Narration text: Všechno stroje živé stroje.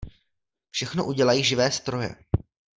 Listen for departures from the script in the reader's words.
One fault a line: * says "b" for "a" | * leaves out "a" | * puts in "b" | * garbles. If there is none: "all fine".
* says "udělají" for "stroje"